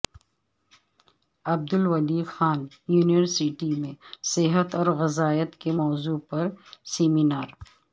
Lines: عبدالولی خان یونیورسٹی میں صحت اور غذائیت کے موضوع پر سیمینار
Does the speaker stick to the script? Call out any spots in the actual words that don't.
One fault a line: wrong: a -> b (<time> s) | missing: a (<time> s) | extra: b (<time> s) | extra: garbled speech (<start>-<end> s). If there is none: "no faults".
no faults